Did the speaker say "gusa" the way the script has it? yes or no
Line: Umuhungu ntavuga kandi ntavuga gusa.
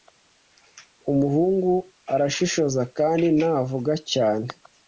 no